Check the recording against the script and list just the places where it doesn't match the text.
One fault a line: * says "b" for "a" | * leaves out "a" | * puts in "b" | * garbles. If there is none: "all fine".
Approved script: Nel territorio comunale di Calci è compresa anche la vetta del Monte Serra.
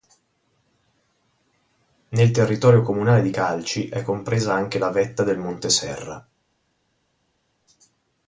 all fine